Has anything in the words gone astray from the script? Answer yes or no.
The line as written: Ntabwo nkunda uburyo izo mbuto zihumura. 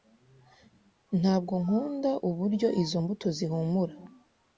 no